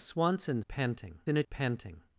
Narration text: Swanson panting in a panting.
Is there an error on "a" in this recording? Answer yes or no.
no